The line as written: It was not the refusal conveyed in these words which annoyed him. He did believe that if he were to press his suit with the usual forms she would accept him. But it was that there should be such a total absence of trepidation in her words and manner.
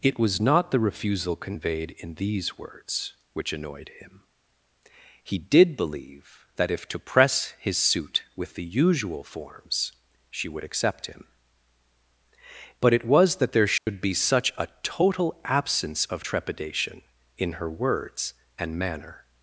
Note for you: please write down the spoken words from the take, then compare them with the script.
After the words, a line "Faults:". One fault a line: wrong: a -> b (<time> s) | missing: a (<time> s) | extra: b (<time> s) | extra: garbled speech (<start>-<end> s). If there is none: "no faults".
It was not the refusal conveyed in these words which annoyed him. He did believe that if to press his suit with the usual forms she would accept him. But it was that there should be such a total absence of trepidation in her words and manner.
Faults:
missing: he were (6.9 s)